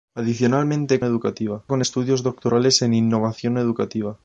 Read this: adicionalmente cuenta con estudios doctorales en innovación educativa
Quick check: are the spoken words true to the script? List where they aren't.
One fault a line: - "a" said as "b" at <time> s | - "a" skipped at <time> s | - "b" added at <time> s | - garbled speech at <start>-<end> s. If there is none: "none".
- "cuenta" said as "educativa" at 1.0 s